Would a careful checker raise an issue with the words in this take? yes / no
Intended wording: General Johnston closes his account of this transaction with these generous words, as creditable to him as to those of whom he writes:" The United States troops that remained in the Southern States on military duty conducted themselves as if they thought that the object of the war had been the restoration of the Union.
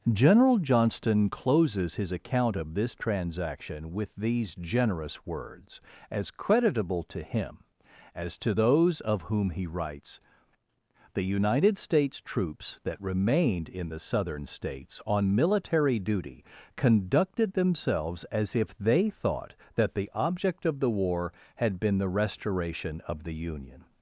no